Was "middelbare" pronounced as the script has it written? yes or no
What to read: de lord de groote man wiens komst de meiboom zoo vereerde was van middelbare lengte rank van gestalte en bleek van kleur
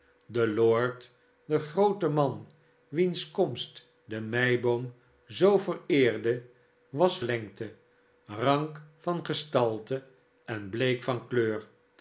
no